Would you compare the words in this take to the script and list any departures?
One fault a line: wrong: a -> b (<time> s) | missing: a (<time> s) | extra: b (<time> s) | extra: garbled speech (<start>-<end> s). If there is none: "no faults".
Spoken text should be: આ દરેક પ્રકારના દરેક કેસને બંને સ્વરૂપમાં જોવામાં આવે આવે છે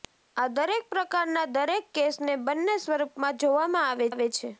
no faults